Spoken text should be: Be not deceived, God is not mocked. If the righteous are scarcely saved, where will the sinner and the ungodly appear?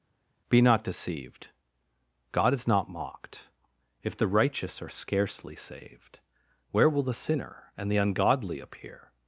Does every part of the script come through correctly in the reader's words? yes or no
yes